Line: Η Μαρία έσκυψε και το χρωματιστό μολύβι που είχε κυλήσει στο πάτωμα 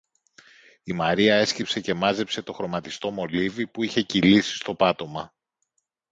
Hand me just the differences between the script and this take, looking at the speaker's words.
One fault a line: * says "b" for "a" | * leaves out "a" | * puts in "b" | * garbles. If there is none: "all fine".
* puts in "μάζεψε"